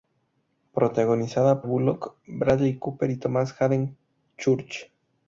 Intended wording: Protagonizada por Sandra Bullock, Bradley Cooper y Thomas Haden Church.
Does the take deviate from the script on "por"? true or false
true